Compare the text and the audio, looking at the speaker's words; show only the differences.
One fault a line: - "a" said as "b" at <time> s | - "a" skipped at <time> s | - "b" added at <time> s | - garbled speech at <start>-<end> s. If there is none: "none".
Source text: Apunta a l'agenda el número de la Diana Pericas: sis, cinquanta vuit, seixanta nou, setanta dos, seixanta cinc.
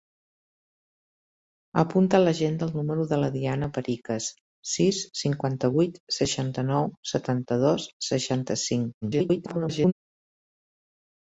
- garbled speech at 9.0-9.9 s